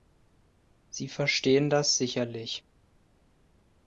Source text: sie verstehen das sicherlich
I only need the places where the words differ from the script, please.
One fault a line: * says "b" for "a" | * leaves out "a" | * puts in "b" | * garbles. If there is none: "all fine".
all fine